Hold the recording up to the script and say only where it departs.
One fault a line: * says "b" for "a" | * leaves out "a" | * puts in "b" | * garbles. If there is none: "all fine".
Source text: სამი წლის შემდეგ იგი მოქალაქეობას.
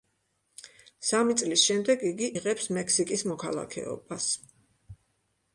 * puts in "იღებს მექსიკის"